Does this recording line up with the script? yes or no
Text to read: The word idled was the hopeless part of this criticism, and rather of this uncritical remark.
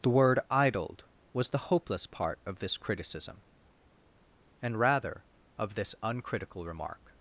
yes